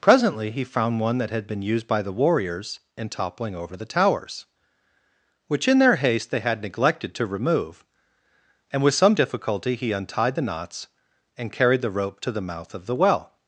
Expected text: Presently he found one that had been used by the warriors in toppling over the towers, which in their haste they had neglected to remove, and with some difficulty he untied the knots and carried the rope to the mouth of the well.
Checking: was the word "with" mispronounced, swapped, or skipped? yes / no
no